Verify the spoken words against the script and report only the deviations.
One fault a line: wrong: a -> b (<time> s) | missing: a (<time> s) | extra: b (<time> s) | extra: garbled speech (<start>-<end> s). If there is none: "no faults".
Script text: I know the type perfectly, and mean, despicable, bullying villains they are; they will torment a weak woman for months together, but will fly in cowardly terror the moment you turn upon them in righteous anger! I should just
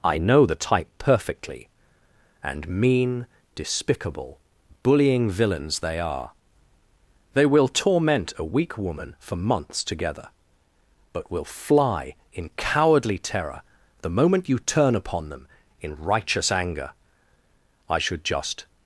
no faults